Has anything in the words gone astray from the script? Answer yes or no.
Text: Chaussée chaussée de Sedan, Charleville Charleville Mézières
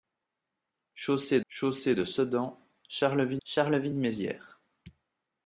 no